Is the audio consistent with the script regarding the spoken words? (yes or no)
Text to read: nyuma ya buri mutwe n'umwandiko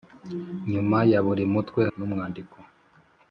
yes